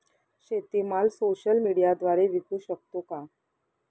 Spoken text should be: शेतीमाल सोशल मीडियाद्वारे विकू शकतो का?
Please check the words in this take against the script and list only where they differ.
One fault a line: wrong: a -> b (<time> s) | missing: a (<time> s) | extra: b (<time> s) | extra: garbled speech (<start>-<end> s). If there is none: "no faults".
no faults